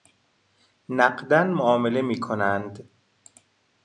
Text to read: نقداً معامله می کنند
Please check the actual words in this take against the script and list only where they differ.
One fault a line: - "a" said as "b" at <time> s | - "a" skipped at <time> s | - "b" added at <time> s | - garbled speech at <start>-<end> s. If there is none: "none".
none